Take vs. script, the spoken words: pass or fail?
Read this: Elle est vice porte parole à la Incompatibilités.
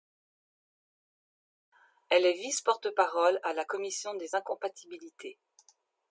fail